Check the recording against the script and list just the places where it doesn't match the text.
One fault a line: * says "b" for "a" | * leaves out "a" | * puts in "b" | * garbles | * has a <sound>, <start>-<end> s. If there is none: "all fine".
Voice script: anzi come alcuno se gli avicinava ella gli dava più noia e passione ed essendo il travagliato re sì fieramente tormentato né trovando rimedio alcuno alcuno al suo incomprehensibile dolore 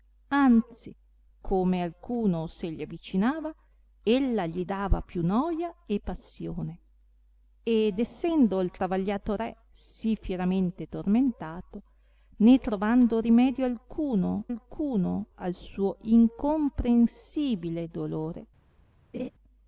* has a laugh, 19.1-19.3 s